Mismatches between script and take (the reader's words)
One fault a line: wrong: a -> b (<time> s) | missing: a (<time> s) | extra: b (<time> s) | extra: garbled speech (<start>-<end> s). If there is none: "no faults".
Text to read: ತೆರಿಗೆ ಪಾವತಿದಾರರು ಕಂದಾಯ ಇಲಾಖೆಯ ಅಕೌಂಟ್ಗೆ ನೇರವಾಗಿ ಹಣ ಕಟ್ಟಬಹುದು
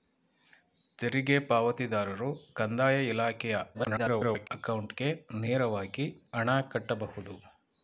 extra: garbled speech (3.7-4.5 s)